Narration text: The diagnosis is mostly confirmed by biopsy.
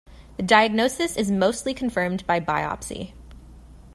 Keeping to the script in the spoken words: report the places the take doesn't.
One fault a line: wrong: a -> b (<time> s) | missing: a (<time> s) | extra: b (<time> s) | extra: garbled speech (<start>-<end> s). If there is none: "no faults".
no faults